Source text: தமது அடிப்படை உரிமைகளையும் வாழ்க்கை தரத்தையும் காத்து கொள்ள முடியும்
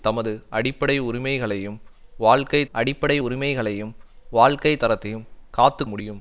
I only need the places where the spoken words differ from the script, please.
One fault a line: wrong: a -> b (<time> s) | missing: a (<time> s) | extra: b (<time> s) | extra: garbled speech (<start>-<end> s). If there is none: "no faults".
extra: அடிப்படை உரிமைகளையும் வாழ்க்கை (2.7 s)
missing: கொள்ள (5.8 s)